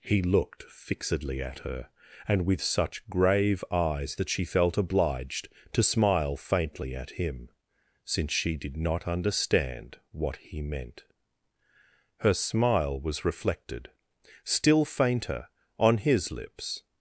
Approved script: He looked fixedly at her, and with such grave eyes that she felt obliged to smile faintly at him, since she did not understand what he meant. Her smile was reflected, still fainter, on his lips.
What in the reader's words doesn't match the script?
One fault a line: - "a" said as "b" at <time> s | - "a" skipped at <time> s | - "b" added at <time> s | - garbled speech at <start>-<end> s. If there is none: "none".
none